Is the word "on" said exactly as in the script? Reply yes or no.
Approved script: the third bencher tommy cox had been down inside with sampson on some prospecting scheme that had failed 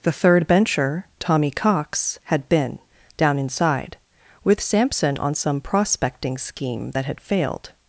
yes